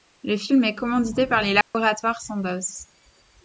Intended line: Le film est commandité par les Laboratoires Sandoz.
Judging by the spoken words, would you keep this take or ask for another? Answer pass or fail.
pass